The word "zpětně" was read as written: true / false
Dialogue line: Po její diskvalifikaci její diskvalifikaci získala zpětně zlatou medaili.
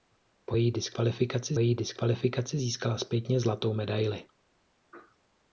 true